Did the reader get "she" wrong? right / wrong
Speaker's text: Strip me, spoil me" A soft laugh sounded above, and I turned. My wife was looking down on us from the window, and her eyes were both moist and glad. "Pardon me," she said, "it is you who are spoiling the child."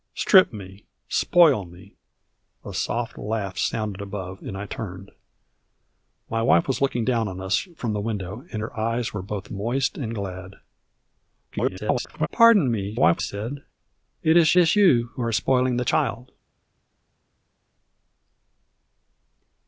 wrong